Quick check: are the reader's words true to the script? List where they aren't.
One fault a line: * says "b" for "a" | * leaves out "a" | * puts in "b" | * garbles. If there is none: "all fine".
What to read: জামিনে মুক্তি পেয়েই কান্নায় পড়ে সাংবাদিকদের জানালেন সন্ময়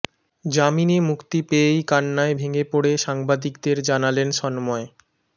* puts in "ভেঙে"